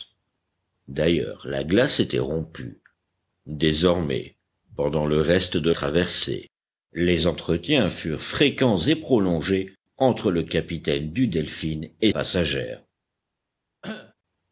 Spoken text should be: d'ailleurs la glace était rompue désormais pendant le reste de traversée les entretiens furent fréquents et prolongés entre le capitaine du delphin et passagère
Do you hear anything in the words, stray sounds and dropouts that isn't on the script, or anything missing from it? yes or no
yes